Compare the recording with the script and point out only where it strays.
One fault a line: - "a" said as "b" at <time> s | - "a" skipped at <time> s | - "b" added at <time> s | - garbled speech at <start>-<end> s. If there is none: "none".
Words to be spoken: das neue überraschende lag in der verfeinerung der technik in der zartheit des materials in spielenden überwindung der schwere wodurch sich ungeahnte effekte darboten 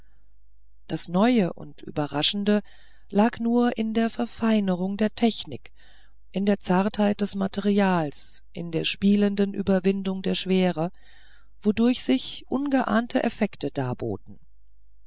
- "und" added at 1.5 s
- "nur" added at 3.4 s
- "der" added at 8.7 s